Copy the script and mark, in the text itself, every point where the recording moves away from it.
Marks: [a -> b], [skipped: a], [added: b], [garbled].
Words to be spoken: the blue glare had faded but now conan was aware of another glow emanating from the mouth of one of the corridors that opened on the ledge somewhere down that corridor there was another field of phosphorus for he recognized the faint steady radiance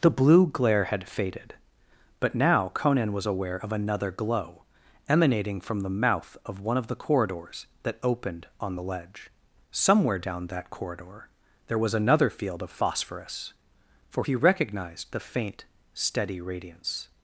the blue glare had faded but now conan was aware of another glow emanating from the mouth of one of the corridors that opened on the ledge somewhere down that corridor there was another field of phosphorus for he recognized the faint steady radiance